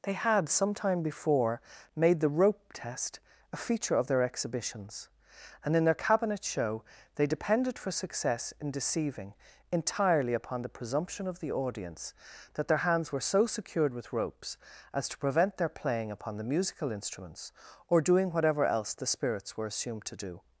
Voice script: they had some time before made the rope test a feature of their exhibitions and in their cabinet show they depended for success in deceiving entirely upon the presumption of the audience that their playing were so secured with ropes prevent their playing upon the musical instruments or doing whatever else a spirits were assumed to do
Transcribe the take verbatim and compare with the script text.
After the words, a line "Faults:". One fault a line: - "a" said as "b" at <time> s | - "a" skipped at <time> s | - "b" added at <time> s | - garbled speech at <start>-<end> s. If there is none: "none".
they had some time before made the rope test a feature of their exhibitions and in their cabinet show they depended for success in deceiving entirely upon the presumption of the audience that their hands were so secured with ropes as to prevent their playing upon the musical instruments or doing whatever else the spirits were assumed to do
Faults:
- "playing" said as "hands" at 12.8 s
- "as to" added at 14.9 s
- "a" said as "the" at 18.9 s